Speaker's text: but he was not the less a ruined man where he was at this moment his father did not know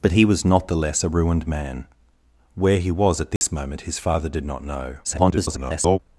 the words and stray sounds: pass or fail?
fail